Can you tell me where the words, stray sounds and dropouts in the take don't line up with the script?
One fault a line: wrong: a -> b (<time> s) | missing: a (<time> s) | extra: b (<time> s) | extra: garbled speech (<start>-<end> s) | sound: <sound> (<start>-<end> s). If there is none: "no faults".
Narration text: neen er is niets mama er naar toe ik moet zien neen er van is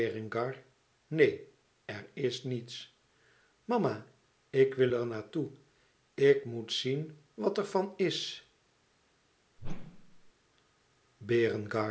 extra: ik wil (4.5 s)
wrong: neen -> wat (7.3 s)
sound: whoosh (9.6-10.3 s)